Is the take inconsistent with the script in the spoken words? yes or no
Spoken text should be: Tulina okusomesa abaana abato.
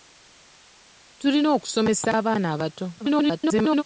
yes